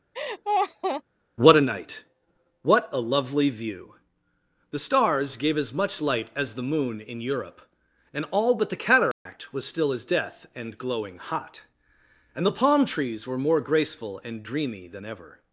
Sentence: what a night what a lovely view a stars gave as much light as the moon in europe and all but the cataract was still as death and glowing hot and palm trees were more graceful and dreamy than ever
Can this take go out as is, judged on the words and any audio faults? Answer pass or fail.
fail